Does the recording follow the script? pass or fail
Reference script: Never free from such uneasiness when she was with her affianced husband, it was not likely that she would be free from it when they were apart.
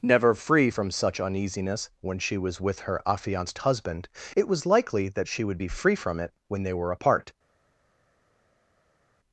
fail